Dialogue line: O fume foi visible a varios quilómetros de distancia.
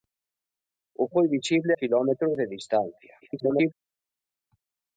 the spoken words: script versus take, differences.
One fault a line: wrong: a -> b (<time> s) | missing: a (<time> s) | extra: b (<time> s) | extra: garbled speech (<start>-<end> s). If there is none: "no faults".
missing: fume (1.1 s)
missing: a varios (1.7 s)
extra: garbled speech (3.2-3.7 s)